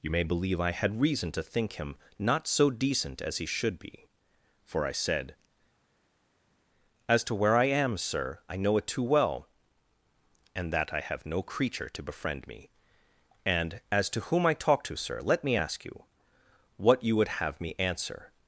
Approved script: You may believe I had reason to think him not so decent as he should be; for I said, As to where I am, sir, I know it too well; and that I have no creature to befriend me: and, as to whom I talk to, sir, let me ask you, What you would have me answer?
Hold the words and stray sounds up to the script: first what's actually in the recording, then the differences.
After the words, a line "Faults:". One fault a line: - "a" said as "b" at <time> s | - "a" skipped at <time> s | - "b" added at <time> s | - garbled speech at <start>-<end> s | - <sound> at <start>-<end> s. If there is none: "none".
You may believe I had reason to think him not so decent as he should be; for I said, As to where I am, sir, I know it too well; and that I have no creature to befriend me: and, as to whom I talk to, sir, let me ask you, What you would have me answer?
Faults:
none